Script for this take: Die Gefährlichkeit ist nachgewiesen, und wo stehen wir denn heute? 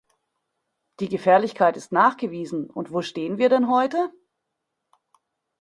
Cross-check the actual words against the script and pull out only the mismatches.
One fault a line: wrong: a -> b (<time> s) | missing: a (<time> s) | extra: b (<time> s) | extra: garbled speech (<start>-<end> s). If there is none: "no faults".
no faults